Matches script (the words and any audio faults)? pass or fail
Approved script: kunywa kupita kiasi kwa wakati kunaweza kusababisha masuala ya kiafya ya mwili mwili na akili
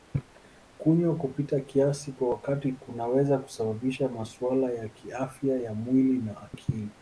fail